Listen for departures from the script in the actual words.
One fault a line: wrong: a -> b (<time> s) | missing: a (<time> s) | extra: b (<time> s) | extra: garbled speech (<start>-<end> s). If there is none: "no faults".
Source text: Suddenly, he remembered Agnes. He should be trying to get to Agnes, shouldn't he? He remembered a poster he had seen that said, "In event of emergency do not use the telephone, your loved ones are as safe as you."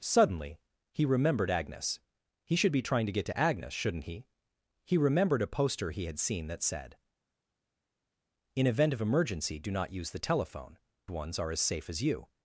missing: your loved (10.8 s)